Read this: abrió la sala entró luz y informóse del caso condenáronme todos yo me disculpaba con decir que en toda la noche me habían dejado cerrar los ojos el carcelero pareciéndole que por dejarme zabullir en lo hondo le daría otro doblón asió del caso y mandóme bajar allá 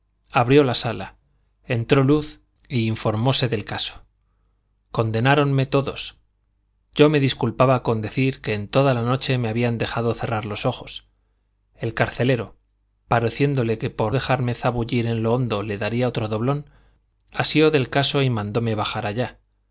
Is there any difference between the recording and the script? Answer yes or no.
no